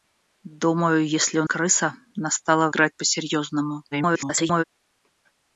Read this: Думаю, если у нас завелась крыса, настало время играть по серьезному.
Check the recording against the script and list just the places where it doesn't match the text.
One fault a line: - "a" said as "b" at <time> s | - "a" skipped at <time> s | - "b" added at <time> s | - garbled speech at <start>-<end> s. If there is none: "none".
- "нас завелась" skipped at 1.4 s
- "время" skipped at 2.7 s
- garbled speech at 3.9-4.6 s